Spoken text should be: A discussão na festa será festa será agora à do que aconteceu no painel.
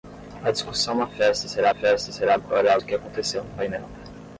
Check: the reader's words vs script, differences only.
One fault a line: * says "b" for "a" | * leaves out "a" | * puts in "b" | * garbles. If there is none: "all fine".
all fine